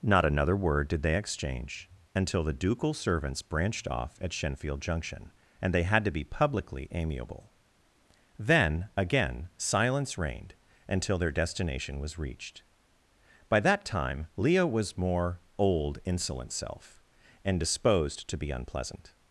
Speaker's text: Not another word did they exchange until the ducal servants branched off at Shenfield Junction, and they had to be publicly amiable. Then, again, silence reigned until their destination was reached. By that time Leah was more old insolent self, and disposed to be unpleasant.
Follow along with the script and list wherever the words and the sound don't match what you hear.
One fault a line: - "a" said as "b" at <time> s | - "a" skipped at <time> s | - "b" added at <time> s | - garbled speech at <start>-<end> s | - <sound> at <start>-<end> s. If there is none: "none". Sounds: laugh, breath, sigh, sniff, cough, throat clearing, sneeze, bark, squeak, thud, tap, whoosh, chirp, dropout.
none